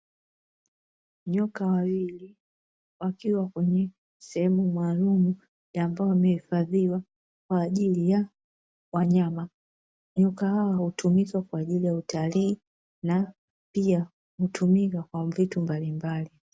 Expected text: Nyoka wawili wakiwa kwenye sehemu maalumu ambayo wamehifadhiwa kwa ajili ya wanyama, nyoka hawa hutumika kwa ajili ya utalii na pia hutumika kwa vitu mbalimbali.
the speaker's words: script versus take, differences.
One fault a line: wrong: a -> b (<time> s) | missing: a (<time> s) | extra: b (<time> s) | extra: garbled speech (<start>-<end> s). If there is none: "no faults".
no faults